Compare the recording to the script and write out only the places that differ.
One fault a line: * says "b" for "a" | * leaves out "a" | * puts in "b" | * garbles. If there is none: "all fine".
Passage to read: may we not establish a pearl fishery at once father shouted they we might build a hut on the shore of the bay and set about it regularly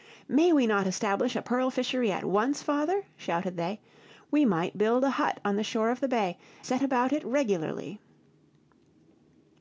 * leaves out "and"